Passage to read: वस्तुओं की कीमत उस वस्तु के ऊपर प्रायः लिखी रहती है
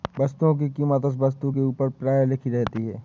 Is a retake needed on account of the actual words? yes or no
no